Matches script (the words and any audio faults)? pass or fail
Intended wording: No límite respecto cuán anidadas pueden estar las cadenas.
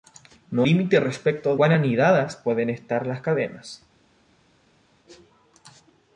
pass